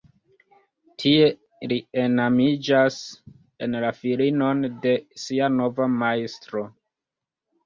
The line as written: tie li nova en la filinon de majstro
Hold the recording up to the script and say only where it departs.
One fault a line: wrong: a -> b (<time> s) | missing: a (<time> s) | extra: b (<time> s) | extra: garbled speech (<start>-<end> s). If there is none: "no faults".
wrong: nova -> enamiĝas (2.0 s)
extra: sia nova (5.3 s)